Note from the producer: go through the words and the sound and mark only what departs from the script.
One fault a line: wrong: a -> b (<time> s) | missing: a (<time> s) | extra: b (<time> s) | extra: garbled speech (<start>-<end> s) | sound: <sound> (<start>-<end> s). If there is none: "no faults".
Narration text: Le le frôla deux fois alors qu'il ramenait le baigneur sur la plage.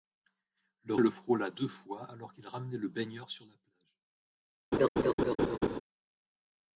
sound: laugh (4.7-5.8 s)